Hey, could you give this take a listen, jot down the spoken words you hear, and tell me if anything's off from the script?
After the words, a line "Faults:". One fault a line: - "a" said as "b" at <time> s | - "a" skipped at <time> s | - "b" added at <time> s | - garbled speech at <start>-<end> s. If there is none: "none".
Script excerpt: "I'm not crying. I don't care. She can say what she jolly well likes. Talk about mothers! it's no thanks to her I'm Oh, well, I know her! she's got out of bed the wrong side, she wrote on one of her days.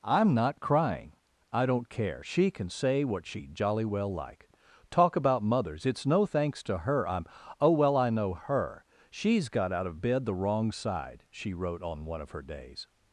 "I'm not crying. I don't care. She can say what she jolly well like. Talk about mothers! it's no thanks to her I'm Oh, well, I know her! she's got out of bed the wrong side, she wrote on one of her days.
Faults:
- "likes" said as "like" at 4.1 s